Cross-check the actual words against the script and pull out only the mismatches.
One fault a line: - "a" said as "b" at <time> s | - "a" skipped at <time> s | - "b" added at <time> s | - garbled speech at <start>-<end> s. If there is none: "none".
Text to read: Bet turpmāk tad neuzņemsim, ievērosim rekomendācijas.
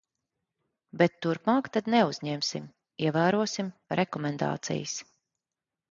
none